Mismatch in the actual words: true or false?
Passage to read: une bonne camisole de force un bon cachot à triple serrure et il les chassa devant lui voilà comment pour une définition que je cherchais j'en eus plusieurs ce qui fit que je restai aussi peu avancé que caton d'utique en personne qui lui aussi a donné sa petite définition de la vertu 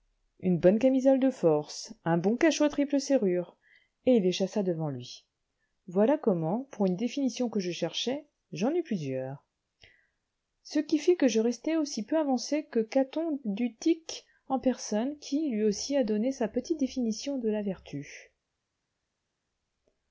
false